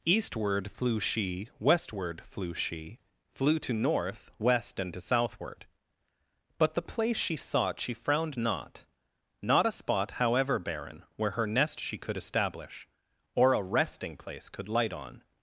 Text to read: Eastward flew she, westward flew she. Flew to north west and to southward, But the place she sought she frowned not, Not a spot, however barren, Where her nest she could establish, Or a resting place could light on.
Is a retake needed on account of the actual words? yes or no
no